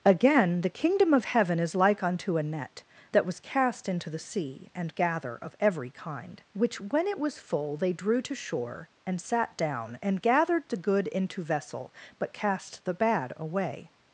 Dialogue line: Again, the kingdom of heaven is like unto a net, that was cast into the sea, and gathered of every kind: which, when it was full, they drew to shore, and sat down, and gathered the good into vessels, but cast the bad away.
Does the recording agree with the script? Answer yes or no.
no